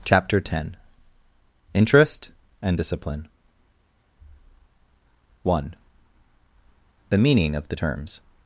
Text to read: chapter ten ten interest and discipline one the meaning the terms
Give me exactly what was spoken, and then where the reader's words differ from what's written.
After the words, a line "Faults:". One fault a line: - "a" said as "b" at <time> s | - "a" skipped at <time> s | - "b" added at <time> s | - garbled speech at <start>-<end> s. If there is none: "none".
chapter ten interest and discipline one the meaning of the terms
Faults:
- "ten" skipped at 0.8 s
- "of" added at 7.5 s